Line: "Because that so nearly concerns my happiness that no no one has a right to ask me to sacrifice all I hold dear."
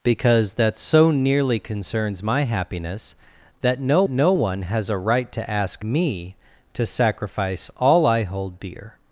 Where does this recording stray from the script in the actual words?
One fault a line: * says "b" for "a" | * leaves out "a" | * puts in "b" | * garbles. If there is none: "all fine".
all fine